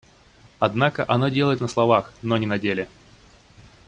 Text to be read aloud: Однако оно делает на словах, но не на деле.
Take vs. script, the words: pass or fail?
pass